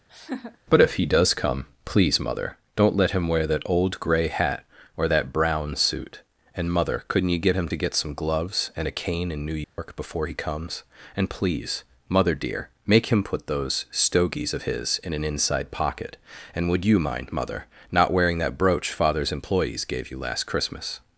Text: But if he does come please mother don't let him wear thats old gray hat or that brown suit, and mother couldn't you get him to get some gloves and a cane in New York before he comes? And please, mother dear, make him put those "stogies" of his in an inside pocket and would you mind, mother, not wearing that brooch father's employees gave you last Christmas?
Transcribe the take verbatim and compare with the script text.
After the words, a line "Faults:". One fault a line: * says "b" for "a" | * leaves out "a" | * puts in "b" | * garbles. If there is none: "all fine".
But if he does come please mother don't let him wear that old gray hat or that brown suit, and mother couldn't you get him to get some gloves and a cane in New York before he comes? And please, mother dear, make him put those "stogies" of his in an inside pocket and would you mind, mother, not wearing that brooch father's employees gave you last Christmas?
Faults:
* says "that" for "thats"